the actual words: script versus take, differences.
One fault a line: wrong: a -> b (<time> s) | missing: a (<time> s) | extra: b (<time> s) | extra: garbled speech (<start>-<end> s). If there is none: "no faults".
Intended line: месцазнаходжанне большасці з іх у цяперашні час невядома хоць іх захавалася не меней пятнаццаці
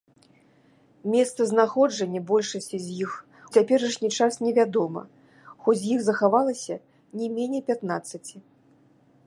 missing: у (3.1 s)